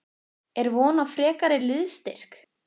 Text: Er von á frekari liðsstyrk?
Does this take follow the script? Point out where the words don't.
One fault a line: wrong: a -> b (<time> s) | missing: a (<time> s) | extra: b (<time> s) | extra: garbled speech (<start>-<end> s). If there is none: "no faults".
no faults